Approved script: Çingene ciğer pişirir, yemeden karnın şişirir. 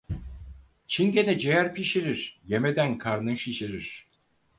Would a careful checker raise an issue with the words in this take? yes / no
no